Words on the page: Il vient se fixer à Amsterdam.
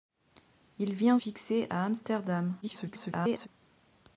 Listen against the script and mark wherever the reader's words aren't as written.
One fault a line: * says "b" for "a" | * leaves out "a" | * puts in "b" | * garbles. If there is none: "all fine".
* leaves out "se"
* garbles